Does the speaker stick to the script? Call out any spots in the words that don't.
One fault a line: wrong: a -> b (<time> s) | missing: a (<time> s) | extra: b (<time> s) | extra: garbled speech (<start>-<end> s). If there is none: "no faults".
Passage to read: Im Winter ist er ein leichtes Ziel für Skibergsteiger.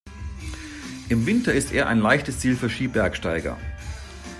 no faults